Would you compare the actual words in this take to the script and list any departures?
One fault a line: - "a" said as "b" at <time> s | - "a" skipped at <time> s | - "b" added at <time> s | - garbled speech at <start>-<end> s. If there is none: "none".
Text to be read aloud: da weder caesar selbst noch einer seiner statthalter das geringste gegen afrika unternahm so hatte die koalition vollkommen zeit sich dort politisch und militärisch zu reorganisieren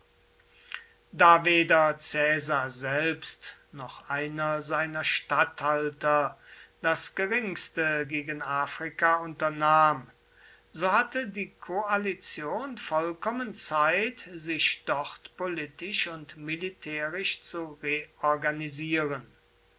none